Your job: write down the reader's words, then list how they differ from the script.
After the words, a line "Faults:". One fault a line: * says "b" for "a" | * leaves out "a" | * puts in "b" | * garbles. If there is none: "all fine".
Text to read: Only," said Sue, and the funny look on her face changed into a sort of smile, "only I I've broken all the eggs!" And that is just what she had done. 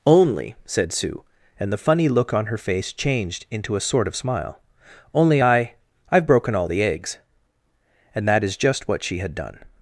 Only," said Sue, and the funny look on her face changed into a sort of smile, "only I I've broken all the eggs!" And that is just what she had done.
Faults:
all fine